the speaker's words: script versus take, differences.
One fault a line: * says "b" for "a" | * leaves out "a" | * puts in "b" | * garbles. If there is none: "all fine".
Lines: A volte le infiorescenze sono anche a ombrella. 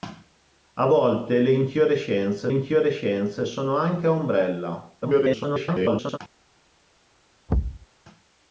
* puts in "infiorescenze"
* garbles